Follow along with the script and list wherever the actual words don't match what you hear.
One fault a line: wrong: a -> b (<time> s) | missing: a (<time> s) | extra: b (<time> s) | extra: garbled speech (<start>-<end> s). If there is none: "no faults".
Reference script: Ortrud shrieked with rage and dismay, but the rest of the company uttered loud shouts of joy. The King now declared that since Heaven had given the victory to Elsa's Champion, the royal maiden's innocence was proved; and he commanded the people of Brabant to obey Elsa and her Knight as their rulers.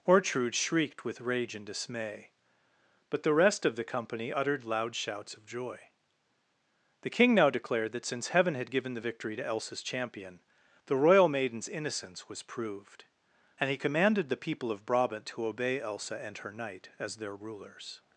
no faults